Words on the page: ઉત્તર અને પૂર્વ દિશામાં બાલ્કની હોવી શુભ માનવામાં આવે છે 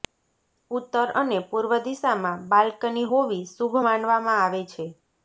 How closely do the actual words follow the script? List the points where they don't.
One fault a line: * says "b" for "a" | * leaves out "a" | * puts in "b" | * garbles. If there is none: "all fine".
all fine